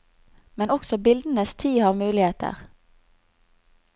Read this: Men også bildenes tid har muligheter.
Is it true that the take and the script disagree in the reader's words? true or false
false